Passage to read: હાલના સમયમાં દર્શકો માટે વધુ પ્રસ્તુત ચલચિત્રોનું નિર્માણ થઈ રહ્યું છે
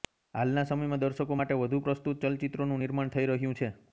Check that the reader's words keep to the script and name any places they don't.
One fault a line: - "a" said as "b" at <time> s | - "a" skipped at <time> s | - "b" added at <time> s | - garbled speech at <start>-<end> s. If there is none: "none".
none